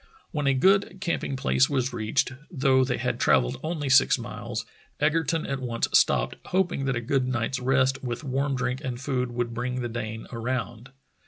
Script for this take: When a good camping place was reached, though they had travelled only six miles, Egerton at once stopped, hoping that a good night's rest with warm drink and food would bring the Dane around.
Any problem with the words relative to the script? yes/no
no